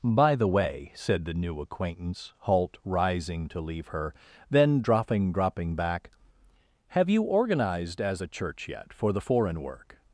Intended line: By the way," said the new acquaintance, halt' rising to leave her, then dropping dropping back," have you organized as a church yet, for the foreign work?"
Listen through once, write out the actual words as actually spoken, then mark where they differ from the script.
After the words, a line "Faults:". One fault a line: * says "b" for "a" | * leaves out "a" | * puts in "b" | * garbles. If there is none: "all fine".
By the way," said the new acquaintance, halt' rising to leave her, then dropping dropping back," have you organized as a church yet, for the foreign work?"
Faults:
all fine